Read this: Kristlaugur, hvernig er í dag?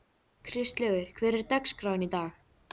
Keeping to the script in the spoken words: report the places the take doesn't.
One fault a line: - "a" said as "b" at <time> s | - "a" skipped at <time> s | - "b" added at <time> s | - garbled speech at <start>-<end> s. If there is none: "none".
- "dagskráin" added at 1.6 s